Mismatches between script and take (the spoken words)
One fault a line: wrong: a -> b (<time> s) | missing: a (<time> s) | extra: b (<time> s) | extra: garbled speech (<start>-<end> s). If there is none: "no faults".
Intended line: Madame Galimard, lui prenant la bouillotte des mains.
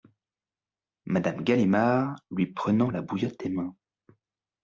no faults